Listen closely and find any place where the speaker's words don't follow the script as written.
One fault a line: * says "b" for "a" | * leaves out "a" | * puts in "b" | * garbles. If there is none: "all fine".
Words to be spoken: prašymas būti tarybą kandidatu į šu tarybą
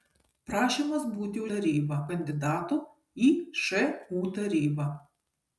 all fine